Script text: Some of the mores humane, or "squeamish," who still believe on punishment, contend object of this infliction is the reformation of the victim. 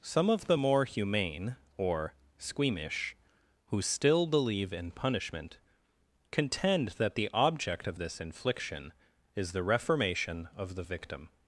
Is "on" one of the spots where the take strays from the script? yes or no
yes